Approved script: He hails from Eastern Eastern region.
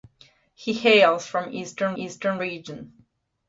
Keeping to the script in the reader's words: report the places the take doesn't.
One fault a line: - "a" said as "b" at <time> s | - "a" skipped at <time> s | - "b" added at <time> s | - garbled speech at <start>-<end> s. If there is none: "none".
none